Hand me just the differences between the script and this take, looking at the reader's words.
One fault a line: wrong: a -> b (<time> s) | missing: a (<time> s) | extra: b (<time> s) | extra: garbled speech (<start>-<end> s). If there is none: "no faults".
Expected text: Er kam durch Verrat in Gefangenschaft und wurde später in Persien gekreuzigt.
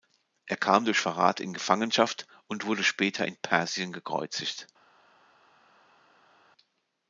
no faults